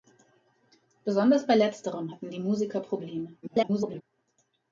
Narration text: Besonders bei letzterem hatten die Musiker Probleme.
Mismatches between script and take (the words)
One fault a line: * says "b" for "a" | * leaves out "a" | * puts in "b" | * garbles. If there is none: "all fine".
* garbles